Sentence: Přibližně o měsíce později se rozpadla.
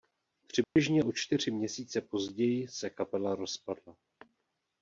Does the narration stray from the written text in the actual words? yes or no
yes